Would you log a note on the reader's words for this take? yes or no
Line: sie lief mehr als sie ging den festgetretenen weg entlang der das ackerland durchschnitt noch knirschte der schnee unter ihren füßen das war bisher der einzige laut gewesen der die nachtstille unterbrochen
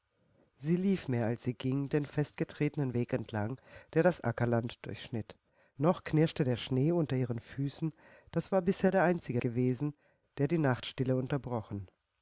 yes